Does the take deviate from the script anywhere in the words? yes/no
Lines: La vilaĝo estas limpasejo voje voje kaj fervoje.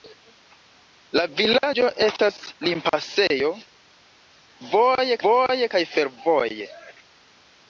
no